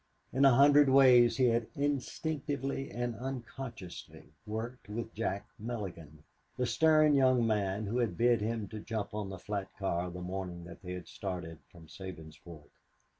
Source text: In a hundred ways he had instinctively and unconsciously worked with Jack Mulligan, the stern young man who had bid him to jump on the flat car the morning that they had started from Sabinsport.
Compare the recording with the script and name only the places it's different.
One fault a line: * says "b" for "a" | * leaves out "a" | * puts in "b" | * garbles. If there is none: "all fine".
all fine